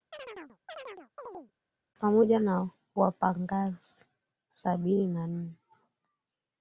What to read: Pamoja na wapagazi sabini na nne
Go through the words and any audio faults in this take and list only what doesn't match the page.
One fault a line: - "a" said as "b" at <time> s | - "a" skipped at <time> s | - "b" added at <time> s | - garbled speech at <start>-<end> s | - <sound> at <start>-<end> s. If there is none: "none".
- chirp at 0.1-1.5 s